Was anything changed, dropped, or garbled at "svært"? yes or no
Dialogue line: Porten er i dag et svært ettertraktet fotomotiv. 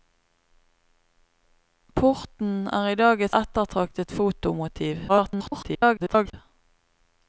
yes